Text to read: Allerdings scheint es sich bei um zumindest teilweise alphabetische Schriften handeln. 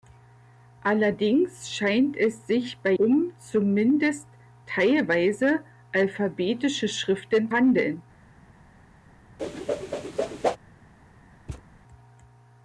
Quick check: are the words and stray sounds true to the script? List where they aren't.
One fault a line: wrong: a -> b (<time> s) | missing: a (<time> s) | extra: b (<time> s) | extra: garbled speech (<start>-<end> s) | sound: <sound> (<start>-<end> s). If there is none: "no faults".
sound: whoosh (9.4-10.6 s)
sound: thud (11.5-11.7 s)